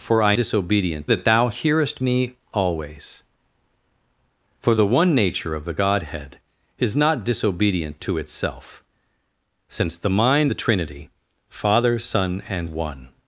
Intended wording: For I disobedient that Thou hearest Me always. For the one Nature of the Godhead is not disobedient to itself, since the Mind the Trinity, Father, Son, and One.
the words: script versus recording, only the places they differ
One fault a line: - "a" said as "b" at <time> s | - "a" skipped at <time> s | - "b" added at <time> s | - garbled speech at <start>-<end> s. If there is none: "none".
none